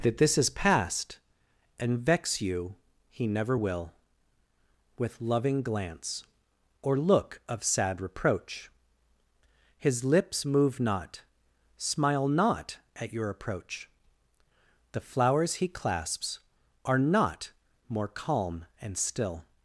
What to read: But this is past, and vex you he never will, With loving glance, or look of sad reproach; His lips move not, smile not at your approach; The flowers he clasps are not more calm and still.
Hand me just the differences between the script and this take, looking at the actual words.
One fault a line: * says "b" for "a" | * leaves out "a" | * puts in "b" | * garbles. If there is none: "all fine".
* says "That" for "But"